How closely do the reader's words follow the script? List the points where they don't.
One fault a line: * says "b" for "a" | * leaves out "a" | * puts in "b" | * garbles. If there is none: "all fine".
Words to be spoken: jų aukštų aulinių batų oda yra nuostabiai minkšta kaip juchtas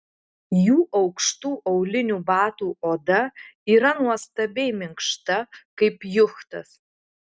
all fine